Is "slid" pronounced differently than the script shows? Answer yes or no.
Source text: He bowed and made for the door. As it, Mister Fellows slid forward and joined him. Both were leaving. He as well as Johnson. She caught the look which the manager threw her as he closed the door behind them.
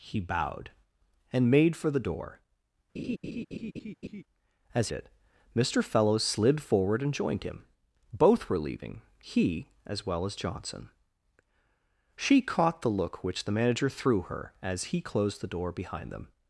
no